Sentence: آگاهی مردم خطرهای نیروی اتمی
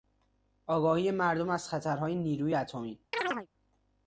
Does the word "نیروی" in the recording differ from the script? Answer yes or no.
no